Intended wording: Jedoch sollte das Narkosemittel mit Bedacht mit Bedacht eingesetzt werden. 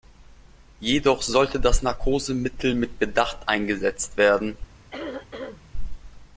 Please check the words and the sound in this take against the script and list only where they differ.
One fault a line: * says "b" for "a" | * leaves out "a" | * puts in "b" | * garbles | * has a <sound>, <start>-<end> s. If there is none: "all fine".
* leaves out "mit Bedacht"
* has a throat clearing, 4.9-5.7 s